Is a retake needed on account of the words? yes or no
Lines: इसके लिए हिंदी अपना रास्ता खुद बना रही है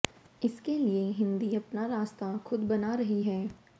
no